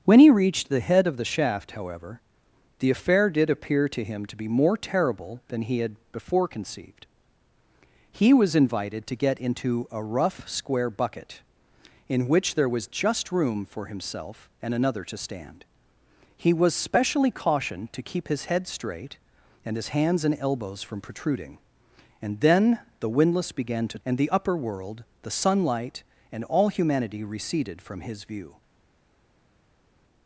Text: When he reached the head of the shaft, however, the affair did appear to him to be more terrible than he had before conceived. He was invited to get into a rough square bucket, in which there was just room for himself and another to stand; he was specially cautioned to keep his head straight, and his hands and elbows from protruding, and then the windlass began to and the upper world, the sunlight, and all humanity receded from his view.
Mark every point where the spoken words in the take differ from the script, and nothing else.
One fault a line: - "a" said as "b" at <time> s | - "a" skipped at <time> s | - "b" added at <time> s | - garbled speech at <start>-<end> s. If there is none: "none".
none